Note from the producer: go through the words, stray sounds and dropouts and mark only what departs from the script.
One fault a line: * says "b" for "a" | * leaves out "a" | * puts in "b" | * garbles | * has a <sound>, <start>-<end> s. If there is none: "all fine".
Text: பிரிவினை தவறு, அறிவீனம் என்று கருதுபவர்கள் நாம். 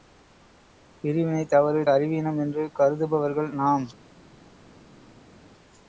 all fine